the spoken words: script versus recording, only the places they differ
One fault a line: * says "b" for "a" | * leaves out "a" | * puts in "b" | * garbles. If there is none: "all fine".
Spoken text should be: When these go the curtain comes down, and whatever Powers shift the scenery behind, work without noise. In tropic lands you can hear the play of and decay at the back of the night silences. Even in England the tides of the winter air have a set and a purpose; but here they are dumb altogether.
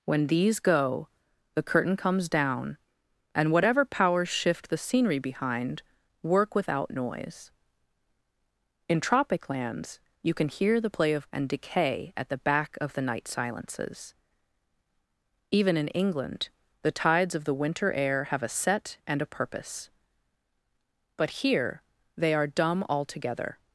all fine